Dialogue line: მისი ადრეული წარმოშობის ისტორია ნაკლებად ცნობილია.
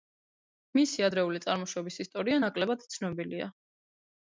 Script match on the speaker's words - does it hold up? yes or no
yes